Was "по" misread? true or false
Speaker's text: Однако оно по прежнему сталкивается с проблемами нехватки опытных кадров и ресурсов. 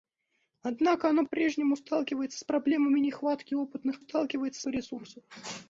true